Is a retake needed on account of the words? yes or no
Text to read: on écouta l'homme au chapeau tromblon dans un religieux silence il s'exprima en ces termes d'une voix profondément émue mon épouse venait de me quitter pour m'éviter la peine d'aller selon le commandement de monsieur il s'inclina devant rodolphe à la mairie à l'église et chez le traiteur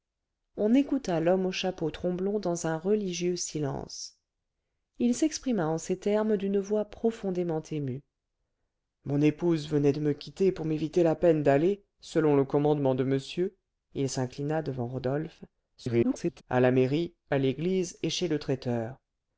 yes